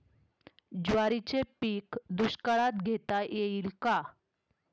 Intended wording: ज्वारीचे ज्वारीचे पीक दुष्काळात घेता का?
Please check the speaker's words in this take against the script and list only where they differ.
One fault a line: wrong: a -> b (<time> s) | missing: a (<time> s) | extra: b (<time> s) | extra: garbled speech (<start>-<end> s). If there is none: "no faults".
missing: ज्वारीचे (1.4 s)
extra: येईल (3.2 s)